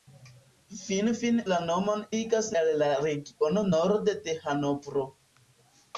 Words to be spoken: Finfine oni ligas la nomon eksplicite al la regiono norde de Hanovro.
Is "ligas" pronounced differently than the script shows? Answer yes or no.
yes